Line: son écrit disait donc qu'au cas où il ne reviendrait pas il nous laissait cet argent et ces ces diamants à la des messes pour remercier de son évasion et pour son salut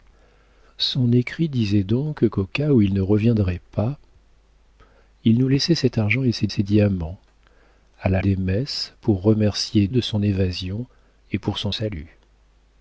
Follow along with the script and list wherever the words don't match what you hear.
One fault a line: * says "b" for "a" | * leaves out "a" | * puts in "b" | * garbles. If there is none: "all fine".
all fine